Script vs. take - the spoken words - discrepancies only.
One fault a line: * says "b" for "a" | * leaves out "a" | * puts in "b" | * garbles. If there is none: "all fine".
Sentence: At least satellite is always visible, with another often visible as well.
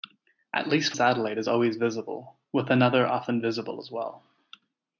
all fine